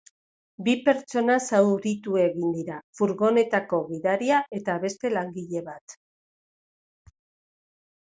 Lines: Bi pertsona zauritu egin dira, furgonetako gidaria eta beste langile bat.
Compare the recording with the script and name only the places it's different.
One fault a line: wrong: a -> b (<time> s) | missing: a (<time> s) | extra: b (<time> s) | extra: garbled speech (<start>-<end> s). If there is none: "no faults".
no faults